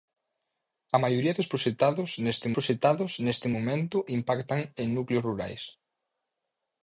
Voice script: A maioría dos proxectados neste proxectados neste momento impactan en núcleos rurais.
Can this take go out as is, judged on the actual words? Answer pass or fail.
pass